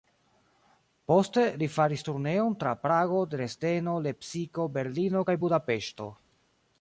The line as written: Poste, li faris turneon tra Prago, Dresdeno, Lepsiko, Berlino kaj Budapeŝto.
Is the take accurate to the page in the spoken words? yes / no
yes